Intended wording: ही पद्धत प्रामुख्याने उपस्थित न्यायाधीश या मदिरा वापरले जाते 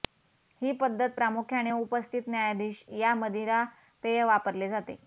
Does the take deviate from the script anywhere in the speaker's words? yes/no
yes